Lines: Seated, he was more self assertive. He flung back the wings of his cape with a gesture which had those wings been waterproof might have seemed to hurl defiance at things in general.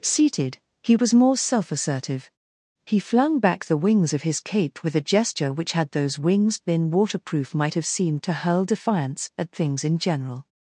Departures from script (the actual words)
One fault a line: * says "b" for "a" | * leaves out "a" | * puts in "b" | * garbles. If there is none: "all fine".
all fine